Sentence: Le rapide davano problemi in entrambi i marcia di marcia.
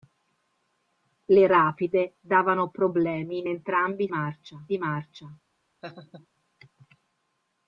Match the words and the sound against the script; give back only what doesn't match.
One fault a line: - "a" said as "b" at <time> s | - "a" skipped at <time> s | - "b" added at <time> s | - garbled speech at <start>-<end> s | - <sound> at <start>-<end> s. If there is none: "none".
- laugh at 5.8-6.3 s